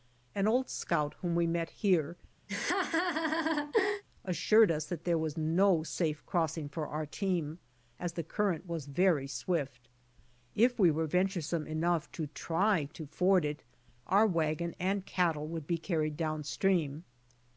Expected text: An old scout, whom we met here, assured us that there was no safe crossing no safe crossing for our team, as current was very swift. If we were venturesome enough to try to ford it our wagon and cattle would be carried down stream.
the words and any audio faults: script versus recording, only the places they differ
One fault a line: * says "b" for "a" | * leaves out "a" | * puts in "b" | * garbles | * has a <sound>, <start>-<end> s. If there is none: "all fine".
* has a laugh, 2.5-4.0 s
* leaves out "no safe crossing"
* puts in "the"